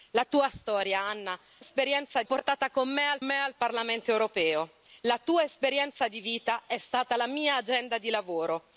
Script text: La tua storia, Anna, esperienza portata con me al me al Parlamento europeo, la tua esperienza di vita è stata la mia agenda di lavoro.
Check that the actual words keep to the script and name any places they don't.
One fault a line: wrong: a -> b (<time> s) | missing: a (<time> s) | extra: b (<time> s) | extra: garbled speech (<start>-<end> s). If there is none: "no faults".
no faults